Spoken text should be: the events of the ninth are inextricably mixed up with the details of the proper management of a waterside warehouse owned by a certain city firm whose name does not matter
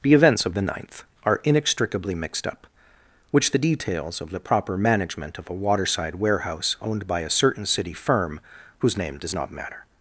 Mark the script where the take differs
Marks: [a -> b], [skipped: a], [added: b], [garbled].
the events of the ninth are inextricably mixed up [with -> which] the details of the proper management of a waterside warehouse owned by a certain city firm whose name does not matter